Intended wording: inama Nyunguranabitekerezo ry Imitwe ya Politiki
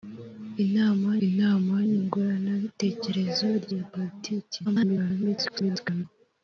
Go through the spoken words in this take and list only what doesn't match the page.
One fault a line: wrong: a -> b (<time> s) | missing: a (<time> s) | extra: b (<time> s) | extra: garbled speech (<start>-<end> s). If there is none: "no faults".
extra: inama (1.3 s)
missing: Imitwe (3.7 s)
extra: garbled speech (4.6-6.0 s)